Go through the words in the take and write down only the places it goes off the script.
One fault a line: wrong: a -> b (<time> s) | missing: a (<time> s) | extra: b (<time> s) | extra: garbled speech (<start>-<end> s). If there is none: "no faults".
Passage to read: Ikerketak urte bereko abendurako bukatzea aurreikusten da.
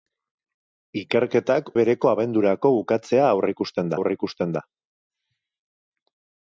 missing: urte (1.7 s)
extra: aurreikusten (4.0 s)